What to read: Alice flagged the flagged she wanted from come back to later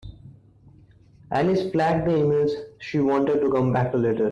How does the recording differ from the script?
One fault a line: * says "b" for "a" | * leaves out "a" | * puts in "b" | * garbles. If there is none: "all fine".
* says "emails" for "flagged"
* says "to" for "from"